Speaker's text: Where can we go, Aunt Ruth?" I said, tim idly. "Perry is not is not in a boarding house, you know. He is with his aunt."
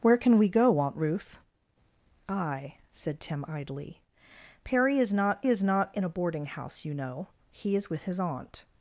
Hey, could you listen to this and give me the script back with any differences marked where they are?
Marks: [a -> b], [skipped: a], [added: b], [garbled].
Where can we go, Aunt Ruth?" I said, tim idly. "Perry is not is not in a boarding house, you know. He is with his aunt."